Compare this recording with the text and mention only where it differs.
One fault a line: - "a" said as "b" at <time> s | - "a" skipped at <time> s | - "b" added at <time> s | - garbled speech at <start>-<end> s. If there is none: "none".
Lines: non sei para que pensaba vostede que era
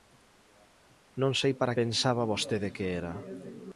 - "que" skipped at 1.8 s